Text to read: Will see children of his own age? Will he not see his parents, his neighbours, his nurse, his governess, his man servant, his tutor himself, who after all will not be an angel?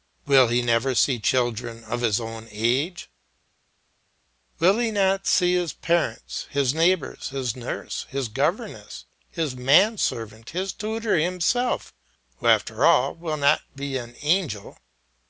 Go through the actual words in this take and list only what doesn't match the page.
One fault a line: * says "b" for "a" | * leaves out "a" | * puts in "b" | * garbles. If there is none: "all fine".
* puts in "he never"